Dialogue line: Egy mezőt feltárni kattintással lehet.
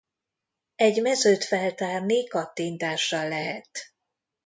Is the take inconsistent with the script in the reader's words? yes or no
no